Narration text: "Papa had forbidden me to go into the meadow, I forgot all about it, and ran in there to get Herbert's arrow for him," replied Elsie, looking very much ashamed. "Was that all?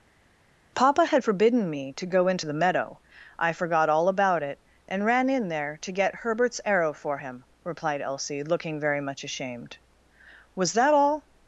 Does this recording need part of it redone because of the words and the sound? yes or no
no